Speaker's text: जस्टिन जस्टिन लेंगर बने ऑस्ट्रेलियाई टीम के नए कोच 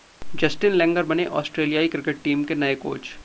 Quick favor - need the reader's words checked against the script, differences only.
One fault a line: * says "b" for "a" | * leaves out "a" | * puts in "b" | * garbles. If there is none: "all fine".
* leaves out "जस्टिन"
* puts in "क्रिकेट"